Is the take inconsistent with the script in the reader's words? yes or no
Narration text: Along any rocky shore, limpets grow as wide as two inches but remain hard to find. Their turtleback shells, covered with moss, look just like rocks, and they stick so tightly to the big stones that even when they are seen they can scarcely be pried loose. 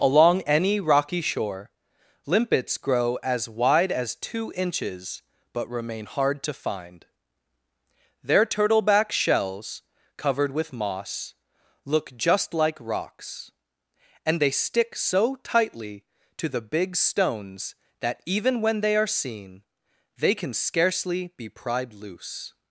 no